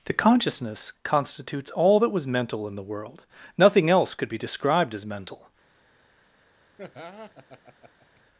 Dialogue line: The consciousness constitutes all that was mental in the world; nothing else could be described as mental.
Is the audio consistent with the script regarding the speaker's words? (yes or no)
yes